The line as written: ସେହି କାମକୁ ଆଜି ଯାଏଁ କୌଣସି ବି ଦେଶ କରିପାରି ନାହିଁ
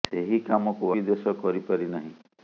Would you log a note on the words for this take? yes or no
yes